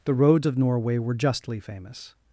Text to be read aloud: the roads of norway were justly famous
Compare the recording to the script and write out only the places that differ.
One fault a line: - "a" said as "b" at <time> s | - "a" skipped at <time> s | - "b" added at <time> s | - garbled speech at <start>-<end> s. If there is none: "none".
none